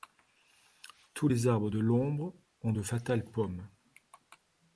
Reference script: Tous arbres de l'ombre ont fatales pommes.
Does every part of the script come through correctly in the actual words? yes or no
no